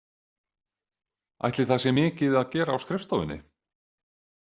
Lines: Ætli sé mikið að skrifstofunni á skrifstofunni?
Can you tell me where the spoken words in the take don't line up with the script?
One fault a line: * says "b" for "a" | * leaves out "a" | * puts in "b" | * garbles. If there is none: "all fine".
* puts in "það"
* says "gera" for "skrifstofunni"